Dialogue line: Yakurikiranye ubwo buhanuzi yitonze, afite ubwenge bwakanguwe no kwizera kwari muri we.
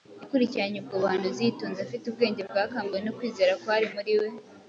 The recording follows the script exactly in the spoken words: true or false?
true